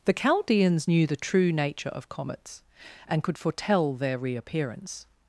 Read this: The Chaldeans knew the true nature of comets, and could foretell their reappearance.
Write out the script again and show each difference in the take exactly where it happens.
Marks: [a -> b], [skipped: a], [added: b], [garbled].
The Chaldeans knew the true nature of comets, and could foretell their reappearance.